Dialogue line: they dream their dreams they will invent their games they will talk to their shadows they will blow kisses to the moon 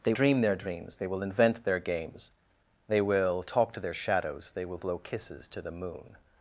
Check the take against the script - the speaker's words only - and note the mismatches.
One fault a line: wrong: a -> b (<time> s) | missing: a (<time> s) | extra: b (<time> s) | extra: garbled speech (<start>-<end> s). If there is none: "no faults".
no faults